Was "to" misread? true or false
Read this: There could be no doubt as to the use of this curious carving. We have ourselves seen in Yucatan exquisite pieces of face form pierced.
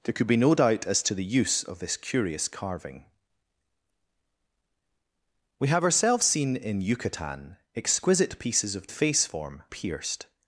false